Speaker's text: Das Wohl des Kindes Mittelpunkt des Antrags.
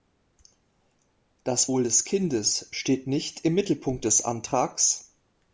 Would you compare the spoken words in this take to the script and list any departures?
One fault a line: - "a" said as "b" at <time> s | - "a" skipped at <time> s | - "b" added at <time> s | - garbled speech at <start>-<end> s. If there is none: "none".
- "steht nicht im" added at 2.7 s